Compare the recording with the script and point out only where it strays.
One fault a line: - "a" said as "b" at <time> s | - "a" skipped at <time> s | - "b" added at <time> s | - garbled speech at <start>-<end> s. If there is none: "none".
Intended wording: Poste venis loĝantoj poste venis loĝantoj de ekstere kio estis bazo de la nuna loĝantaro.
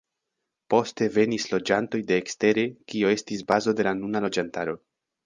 - "poste venis loĝantoj" skipped at 2.0 s